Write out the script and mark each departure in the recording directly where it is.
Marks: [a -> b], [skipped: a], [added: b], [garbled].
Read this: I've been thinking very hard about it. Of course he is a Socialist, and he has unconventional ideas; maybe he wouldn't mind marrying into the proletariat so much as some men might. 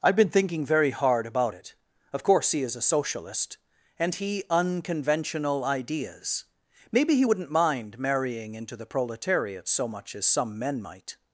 I've been thinking very hard about it. Of course he is a Socialist, and he [skipped: has] unconventional ideas; maybe he wouldn't mind marrying into the proletariat so much as some men might.